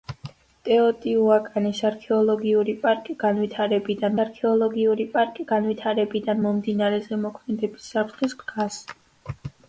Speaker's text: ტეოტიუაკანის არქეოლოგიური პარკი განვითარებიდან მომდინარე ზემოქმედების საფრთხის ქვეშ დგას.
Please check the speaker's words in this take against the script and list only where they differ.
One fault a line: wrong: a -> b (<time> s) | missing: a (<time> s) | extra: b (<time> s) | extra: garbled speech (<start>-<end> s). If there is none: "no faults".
extra: არქეოლოგიური პარკი განვითარებიდან (4.2 s)
missing: ქვეშ (8.3 s)